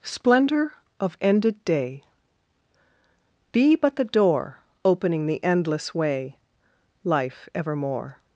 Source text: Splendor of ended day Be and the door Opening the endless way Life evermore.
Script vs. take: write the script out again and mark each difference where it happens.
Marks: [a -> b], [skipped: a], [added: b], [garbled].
Splendor of ended day Be [and -> but] the door Opening the endless way Life evermore.